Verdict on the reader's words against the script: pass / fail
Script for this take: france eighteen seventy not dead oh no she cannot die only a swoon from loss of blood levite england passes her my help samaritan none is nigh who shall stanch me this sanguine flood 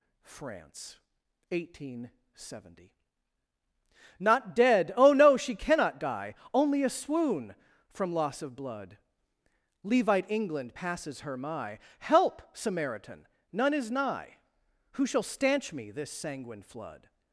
pass